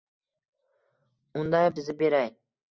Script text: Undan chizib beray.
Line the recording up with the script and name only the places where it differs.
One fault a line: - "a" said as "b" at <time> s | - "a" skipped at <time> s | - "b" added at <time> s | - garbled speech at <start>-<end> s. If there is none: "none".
none